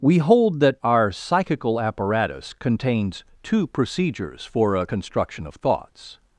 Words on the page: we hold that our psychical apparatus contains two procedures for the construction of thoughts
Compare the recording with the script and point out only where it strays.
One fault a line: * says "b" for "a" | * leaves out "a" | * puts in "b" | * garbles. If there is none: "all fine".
* says "a" for "the"